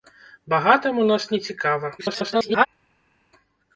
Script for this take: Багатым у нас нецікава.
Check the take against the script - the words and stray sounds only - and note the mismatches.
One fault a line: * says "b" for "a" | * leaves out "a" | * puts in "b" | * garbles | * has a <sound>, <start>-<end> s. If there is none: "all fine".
* garbles